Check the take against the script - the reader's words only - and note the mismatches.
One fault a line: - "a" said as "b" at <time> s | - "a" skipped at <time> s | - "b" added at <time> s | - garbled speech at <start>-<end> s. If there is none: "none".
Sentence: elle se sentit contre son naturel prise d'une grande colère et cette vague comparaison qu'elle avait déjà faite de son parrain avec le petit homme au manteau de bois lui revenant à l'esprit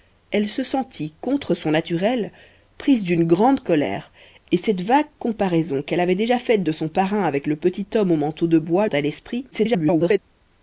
- "lui revenant" skipped at 8.9 s
- garbled speech at 9.5-10.2 s